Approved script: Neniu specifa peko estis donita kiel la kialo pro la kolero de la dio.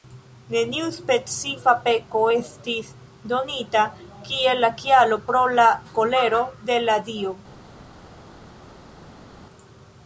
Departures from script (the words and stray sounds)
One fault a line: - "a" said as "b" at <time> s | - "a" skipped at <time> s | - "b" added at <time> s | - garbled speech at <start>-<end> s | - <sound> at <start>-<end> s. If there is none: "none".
none